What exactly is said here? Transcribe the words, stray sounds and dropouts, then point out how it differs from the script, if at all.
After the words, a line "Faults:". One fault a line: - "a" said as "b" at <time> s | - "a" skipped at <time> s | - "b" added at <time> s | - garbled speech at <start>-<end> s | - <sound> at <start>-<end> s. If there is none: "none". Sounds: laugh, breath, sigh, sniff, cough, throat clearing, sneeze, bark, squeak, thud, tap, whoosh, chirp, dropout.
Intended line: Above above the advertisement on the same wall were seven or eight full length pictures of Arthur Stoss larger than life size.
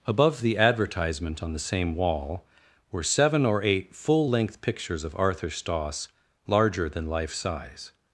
Above the advertisement on the same wall were seven or eight full length pictures of Arthur Stoss larger than life size.
Faults:
- "above" skipped at 0.4 s